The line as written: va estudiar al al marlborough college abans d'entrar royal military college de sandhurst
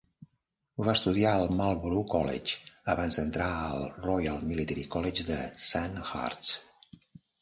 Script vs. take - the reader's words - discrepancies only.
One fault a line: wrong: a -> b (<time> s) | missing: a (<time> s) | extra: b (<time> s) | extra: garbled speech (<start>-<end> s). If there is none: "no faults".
missing: al (1.5 s)
extra: al (3.7 s)